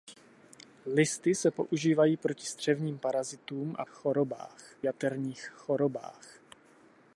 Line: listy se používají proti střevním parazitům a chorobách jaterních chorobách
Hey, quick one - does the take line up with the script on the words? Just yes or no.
yes